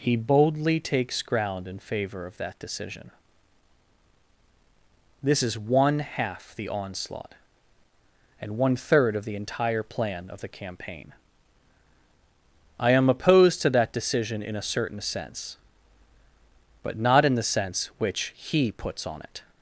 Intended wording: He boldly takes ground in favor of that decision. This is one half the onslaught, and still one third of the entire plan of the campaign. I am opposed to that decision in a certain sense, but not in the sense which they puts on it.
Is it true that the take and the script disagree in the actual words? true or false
true